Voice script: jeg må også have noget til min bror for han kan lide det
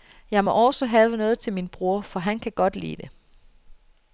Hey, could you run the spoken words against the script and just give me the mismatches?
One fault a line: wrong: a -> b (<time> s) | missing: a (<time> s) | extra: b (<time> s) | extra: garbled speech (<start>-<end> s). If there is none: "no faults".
extra: godt (2.5 s)